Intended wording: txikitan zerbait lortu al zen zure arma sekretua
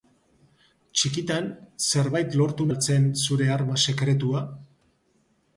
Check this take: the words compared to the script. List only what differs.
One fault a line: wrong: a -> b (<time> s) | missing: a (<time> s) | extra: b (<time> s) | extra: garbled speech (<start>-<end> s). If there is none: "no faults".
no faults